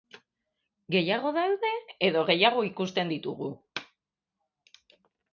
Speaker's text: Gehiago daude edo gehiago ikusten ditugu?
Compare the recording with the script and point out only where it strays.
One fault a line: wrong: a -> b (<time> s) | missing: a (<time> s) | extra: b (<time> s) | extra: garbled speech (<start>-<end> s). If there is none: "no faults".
no faults